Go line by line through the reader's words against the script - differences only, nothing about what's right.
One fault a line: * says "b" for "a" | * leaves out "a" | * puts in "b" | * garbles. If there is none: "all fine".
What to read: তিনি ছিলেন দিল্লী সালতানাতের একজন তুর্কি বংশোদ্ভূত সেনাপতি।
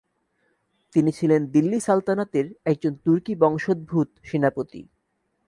all fine